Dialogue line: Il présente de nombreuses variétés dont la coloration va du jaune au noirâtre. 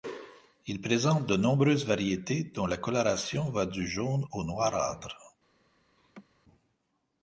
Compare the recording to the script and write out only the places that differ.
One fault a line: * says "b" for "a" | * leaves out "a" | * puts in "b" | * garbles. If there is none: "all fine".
all fine